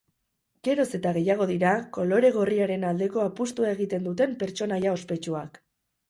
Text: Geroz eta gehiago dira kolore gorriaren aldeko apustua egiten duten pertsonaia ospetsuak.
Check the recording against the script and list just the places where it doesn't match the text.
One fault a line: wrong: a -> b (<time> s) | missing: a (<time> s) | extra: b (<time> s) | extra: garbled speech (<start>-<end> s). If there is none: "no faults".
no faults